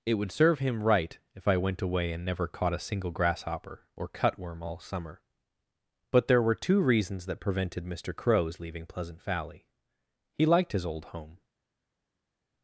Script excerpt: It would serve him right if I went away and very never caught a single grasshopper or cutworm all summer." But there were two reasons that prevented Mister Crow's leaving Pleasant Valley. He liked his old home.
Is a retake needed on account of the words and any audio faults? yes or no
yes